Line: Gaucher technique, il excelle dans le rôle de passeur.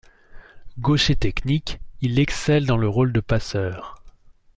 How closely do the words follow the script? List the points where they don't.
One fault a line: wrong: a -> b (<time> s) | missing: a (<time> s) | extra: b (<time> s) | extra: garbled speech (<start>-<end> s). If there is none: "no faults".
no faults